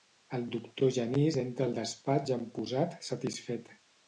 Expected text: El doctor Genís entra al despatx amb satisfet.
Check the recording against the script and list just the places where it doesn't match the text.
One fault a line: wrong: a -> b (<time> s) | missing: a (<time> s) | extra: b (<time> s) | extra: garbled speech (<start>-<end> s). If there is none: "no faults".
extra: posat (2.6 s)